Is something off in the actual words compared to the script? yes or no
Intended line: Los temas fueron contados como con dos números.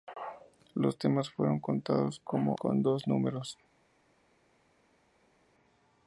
no